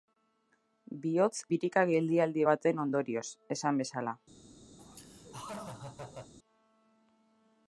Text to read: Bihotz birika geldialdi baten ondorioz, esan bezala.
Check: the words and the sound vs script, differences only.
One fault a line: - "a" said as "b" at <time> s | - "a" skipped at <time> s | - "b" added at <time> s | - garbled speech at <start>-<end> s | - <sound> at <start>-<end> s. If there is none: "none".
- laugh at 4.8-6.3 s